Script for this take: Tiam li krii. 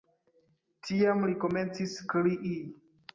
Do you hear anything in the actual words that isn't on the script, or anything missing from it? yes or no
yes